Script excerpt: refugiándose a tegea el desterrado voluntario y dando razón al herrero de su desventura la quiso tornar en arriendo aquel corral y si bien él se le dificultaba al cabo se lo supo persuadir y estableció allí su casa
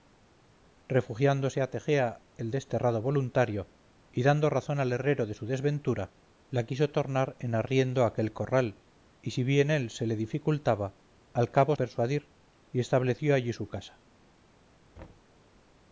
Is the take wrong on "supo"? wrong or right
wrong